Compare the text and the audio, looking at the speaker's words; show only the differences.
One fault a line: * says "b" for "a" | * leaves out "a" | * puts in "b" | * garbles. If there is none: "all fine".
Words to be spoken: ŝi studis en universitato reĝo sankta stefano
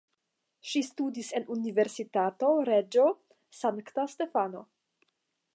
all fine